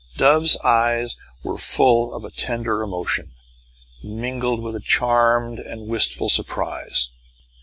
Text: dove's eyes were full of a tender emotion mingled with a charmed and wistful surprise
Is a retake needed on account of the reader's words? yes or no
no